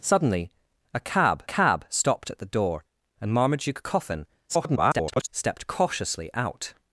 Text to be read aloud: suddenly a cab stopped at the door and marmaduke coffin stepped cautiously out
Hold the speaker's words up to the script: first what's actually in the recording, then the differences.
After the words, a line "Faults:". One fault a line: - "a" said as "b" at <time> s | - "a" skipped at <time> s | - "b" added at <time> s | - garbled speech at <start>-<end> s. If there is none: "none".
suddenly a cab cab stopped at the door and marmaduke coffin [garbled] stepped cautiously out
Faults:
- "cab" added at 1.4 s
- garbled speech at 4.5-5.3 s